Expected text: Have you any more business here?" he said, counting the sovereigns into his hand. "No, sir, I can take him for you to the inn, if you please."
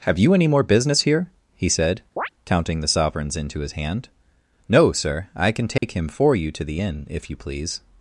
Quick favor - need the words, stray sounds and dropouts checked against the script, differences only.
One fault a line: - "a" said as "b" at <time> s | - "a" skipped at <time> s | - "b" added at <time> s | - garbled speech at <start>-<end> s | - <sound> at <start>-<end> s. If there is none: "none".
- chirp at 2.2-2.3 s
- dropout at 5.8-5.8 s